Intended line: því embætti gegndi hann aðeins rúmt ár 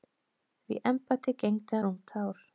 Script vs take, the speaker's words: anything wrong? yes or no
yes